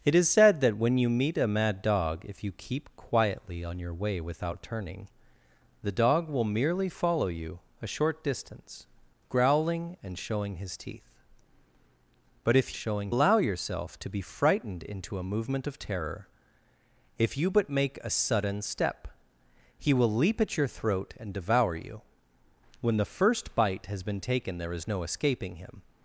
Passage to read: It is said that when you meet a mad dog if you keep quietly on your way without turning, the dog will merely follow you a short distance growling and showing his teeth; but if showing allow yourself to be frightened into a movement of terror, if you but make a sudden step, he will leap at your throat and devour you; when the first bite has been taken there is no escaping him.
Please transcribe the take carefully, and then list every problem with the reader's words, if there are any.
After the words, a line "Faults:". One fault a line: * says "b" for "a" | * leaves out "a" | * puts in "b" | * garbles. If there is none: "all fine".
It is said that when you meet a mad dog if you keep quietly on your way without turning, the dog will merely follow you a short distance growling and showing his teeth; but if showing allow yourself to be frightened into a movement of terror, if you but make a sudden step, he will leap at your throat and devour you; when the first bite has been taken there is no escaping him.
Faults:
all fine